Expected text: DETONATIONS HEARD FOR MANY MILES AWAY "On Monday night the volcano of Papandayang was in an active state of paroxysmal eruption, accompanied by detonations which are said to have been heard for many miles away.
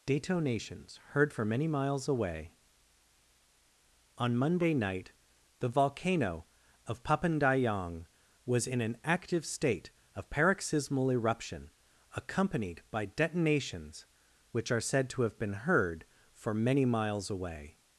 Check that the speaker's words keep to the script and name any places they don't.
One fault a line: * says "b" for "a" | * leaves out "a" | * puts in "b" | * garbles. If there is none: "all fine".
all fine